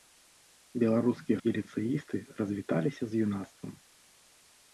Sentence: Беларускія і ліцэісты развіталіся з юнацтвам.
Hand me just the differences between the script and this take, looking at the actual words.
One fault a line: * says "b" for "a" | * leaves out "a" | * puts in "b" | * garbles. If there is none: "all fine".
all fine